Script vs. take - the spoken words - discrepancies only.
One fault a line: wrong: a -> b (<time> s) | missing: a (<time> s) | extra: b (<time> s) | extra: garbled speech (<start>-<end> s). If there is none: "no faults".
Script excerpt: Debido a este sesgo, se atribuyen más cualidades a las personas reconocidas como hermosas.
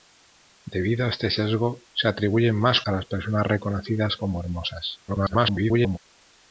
missing: cualidades (2.8 s)
extra: garbled speech (5.1-6.0 s)